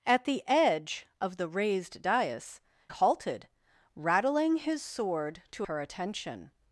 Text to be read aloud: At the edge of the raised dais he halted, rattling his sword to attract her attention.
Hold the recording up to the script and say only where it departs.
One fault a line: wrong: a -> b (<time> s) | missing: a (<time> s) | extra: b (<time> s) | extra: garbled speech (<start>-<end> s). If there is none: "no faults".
missing: he (2.6 s)
missing: attract (5.7 s)